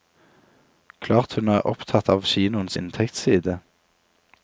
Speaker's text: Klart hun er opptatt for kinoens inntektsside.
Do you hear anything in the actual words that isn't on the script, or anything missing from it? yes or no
yes